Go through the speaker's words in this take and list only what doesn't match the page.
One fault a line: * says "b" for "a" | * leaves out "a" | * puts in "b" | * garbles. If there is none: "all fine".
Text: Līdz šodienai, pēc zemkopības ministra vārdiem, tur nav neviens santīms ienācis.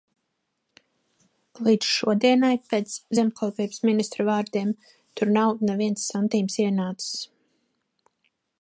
all fine